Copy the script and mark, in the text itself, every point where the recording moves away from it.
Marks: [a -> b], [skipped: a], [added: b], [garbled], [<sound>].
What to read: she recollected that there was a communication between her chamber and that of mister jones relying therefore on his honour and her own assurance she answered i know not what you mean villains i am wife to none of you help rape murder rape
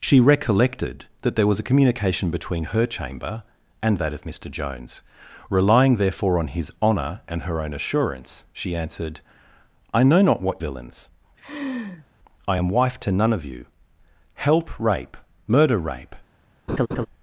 she recollected that there was a communication between her chamber and that of mister jones relying therefore on his honour and her own assurance she answered i know not what [skipped: you mean] villains [laugh] i am wife to none of you help rape murder rape [laugh]